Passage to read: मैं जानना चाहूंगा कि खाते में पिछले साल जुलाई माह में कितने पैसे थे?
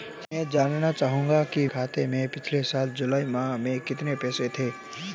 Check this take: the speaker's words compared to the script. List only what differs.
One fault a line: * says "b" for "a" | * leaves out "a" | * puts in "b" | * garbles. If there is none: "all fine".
all fine